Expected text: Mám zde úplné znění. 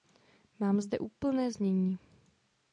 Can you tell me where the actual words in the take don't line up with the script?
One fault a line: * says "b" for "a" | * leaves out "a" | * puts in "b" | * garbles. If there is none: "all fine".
all fine